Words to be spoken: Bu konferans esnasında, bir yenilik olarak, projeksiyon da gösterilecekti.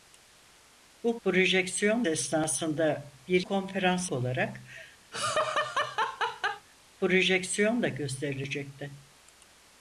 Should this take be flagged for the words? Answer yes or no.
yes